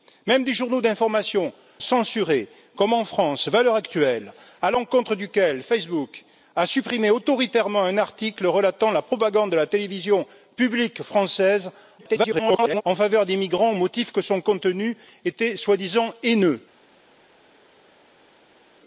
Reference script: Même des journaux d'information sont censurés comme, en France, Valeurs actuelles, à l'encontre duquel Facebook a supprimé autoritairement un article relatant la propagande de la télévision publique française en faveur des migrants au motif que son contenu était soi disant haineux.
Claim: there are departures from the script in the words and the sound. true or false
true